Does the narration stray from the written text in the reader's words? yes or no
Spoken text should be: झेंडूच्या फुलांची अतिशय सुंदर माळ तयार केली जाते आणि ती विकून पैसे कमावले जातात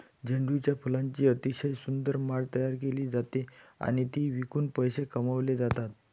no